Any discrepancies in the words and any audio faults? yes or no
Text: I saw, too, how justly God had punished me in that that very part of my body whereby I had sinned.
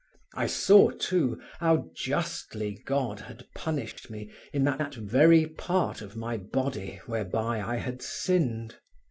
yes